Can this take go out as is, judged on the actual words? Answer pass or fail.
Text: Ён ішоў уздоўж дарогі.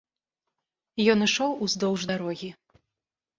pass